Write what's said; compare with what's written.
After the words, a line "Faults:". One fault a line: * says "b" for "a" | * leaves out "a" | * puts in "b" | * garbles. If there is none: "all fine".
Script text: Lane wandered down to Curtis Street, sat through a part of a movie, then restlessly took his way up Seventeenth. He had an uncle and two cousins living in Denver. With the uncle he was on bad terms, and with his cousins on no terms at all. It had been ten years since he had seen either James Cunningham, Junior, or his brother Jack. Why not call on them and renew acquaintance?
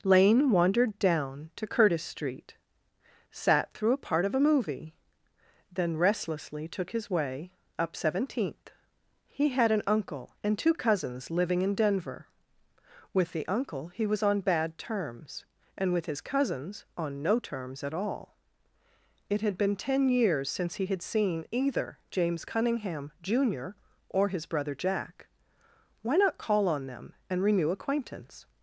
Lane wandered down to Curtis Street, sat through a part of a movie, then restlessly took his way up Seventeenth. He had an uncle and two cousins living in Denver. With the uncle he was on bad terms, and with his cousins on no terms at all. It had been ten years since he had seen either James Cunningham, Junior, or his brother Jack. Why not call on them and renew acquaintance?
Faults:
all fine